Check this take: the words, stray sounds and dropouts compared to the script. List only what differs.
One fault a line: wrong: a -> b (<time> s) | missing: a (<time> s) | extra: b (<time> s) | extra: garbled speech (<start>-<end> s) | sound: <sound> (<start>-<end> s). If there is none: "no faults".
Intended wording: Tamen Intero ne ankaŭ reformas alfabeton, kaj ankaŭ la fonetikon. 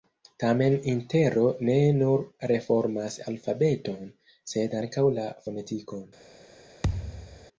wrong: ankaŭ -> nur (2.0 s)
wrong: kaj -> sed (4.5 s)
sound: thud (6.8-7.5 s)